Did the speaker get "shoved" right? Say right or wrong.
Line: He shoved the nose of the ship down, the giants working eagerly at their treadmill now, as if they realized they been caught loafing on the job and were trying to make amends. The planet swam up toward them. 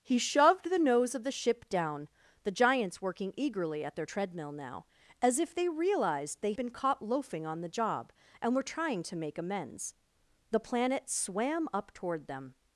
right